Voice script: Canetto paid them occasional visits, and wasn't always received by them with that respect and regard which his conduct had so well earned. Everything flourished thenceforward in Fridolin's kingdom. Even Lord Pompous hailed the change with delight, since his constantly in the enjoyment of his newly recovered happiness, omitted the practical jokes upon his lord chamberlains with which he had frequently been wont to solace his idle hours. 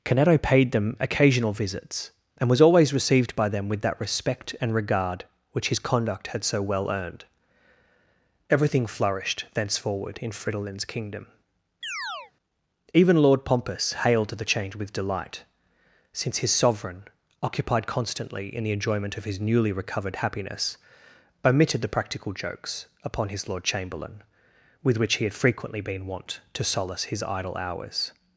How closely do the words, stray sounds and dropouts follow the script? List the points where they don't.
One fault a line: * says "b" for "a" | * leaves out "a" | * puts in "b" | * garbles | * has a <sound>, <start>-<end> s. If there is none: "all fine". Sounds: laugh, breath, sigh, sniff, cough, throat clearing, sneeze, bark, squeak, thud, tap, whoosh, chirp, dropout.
* says "was" for "wasn't"
* has a chirp, 11.8-12.3 s
* puts in "sovereign occupied"
* says "chamberlain" for "chamberlains"